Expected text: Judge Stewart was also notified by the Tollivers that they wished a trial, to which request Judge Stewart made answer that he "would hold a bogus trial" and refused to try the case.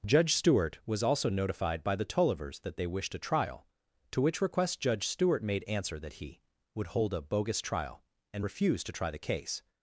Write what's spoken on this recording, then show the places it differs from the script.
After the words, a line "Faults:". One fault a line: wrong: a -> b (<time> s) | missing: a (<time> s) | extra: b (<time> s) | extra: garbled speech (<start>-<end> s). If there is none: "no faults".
Judge Stewart was also notified by the Tollivers that they wished a trial, to which request Judge Stewart made answer that he "would hold a bogus trial" and refused to try the case.
Faults:
no faults